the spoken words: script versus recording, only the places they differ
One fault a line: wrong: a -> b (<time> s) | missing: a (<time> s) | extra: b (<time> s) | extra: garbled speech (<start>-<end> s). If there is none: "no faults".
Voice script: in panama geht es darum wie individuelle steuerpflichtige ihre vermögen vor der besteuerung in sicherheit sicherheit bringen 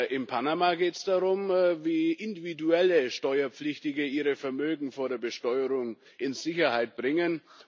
missing: sicherheit (6.9 s)